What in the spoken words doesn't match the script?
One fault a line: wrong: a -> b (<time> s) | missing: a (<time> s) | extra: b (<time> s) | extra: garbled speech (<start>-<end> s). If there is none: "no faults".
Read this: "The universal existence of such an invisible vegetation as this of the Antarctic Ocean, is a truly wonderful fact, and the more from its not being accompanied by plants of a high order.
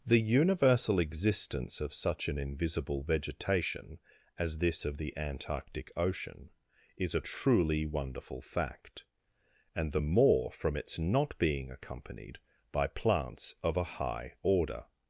no faults